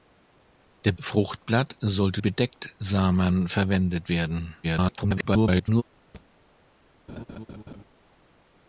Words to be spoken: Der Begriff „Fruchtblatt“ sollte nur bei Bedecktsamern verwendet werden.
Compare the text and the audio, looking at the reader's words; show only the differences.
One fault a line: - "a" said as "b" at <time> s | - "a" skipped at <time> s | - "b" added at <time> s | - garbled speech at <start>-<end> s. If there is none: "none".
- "Begriff" skipped at 0.9 s
- "nur bei" skipped at 2.2 s
- garbled speech at 4.6-5.8 s